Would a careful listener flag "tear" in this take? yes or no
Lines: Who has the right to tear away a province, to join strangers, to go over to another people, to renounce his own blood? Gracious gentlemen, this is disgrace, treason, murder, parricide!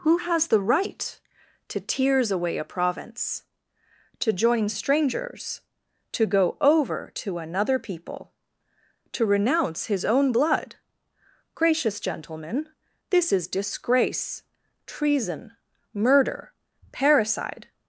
yes